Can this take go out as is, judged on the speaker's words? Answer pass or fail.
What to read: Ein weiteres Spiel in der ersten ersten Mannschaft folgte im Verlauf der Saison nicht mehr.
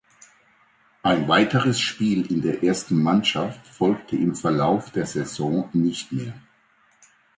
fail